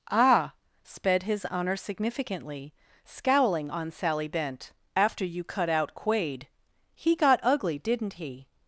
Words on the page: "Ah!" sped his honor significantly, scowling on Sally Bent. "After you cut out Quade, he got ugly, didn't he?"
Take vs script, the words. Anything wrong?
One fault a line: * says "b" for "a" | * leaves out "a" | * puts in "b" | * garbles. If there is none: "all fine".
all fine